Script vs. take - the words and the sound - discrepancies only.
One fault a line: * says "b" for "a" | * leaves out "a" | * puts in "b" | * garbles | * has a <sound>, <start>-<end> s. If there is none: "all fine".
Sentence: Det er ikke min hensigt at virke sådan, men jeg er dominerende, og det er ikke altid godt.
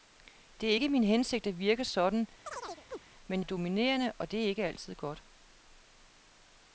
* has a chirp, 2.5-3.0 s
* leaves out "jeg"